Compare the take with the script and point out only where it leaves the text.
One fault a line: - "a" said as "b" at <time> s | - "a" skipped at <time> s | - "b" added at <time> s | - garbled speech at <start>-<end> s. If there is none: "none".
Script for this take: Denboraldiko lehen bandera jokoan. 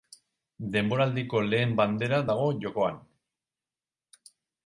- "dago" added at 2.3 s